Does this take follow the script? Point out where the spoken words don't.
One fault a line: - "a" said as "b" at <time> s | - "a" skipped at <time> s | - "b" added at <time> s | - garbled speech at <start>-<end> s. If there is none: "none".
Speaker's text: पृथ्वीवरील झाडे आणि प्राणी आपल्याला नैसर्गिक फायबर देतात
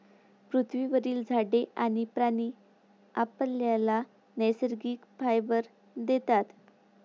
none